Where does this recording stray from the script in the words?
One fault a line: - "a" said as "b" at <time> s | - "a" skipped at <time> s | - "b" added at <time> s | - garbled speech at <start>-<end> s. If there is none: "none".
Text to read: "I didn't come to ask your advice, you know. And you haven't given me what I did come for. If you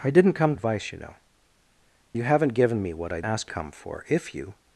- "to ask your" skipped at 0.6 s
- "And" skipped at 1.2 s
- "did" said as "ask" at 3.2 s